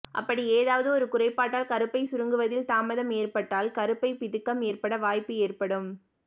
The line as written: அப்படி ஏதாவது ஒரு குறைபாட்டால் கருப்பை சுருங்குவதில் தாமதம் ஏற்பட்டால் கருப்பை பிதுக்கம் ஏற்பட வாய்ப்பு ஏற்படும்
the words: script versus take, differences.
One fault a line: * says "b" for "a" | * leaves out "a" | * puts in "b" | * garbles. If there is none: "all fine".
all fine